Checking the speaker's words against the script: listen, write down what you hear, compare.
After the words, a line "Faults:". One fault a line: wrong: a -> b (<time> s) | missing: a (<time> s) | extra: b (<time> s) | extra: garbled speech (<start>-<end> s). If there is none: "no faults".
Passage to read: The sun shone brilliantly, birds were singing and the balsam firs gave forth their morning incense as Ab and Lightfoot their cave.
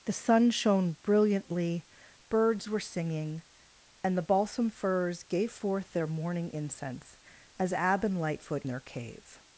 The sun shone brilliantly, birds were singing and the balsam firs gave forth their morning incense as Ab and Lightfoot their cave.
Faults:
no faults